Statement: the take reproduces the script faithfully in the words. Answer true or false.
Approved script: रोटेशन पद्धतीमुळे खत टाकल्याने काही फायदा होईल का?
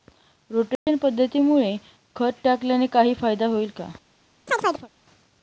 true